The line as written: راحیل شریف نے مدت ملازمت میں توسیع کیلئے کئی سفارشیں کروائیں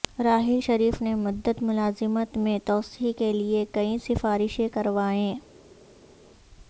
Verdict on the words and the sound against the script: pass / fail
pass